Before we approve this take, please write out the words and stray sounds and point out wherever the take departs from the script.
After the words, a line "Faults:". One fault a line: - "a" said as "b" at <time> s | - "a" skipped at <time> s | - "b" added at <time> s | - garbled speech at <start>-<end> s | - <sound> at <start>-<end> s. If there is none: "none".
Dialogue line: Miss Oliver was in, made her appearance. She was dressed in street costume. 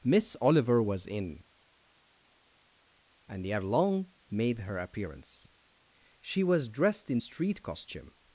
Miss Oliver was in, and ere long made her appearance. She was dressed in street costume.
Faults:
- "and ere long" added at 3.3 s